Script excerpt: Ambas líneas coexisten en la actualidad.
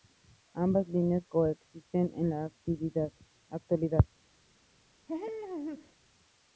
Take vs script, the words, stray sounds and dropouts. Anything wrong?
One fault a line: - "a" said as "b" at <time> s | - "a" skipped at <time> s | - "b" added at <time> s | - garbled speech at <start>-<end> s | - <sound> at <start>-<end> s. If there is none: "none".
- laugh at 5.1-6.0 s